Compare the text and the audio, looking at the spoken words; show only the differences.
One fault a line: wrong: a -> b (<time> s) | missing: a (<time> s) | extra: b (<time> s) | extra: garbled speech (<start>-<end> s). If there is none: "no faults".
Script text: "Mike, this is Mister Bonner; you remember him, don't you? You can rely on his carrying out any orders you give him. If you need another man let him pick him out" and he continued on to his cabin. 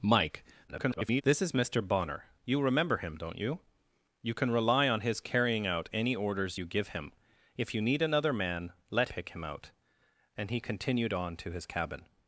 extra: garbled speech (0.7-1.2 s)
missing: him (9.1 s)